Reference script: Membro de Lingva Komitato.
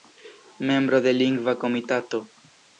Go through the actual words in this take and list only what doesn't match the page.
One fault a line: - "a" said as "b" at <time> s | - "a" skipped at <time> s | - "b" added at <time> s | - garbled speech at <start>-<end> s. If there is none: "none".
none